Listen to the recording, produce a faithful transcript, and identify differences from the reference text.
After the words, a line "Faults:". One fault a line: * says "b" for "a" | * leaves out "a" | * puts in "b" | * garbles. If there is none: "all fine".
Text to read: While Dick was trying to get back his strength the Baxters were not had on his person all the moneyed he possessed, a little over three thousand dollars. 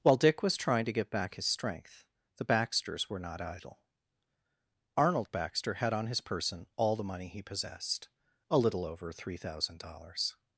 While Dick was trying to get back his strength the Baxters were not idle. Arnold Baxter had on his person all the money he possessed, a little over three thousand dollars.
Faults:
* puts in "idle Arnold Baxter"
* says "money" for "moneyed"